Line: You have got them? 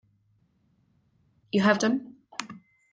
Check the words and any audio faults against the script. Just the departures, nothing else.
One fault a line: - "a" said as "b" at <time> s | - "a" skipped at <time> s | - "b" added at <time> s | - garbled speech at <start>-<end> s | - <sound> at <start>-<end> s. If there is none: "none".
- "got" skipped at 1.8 s